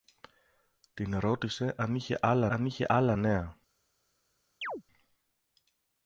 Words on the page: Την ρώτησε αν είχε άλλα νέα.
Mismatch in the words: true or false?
true